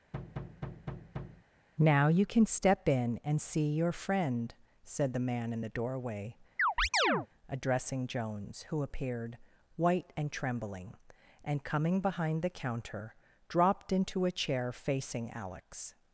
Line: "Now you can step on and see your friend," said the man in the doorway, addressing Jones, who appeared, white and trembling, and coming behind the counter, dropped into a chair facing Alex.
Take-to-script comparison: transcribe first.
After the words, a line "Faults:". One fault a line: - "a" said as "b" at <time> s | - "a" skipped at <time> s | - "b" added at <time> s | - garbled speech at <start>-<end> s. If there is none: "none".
"Now you can step in and see your friend," said the man in the doorway, addressing Jones, who appeared, white and trembling, and coming behind the counter, dropped into a chair facing Alex.
Faults:
- "on" said as "in" at 2.9 s